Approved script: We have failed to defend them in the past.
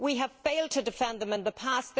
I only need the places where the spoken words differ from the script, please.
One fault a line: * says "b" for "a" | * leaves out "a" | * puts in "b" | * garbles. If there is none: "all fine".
all fine